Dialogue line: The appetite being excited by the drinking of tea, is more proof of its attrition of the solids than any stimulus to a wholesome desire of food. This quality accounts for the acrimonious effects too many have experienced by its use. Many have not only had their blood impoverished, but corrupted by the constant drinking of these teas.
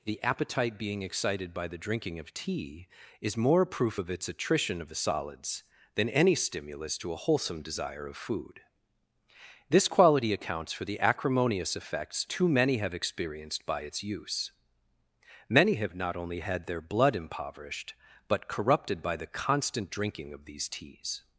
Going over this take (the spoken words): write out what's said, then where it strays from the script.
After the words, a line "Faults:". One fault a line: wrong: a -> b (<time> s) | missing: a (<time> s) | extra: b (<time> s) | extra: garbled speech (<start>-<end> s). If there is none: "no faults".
The appetite being excited by the drinking of tea, is more proof of its attrition of the solids than any stimulus to a wholesome desire of food. This quality accounts for the acrimonious effects too many have experienced by its use. Many have not only had their blood impoverished, but corrupted by the constant drinking of these teas.
Faults:
no faults